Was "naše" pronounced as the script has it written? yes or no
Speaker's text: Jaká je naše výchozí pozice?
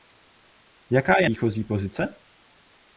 no